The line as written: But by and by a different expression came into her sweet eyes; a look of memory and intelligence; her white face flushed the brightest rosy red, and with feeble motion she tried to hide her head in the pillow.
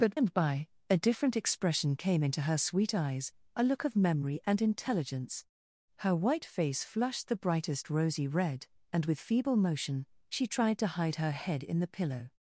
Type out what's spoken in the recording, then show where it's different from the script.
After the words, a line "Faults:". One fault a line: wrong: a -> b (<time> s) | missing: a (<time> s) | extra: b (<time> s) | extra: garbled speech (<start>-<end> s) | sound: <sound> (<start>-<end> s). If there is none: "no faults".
But and by a different expression came into her sweet eyes; a look of memory and intelligence; her white face flushed the brightest rosy red, and with feeble motion she tried to hide her head in the pillow.
Faults:
missing: by (0.2 s)